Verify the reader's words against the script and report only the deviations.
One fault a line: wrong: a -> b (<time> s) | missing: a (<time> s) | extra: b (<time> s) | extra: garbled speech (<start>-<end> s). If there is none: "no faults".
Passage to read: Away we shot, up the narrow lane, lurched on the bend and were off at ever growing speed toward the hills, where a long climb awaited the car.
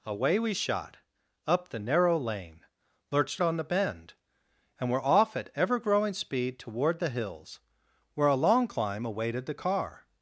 no faults